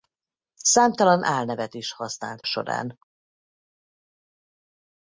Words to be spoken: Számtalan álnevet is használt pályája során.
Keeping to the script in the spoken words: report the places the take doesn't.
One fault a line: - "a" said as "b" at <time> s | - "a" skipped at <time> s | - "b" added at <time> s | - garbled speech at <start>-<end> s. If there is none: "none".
- "pályája" skipped at 2.4 s